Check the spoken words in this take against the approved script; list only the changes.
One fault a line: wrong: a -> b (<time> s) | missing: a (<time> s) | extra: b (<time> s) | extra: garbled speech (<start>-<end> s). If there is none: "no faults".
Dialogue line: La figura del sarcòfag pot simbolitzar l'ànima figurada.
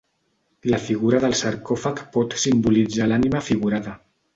no faults